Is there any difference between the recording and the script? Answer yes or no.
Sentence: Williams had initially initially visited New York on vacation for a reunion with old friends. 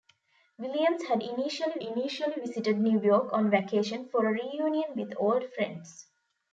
no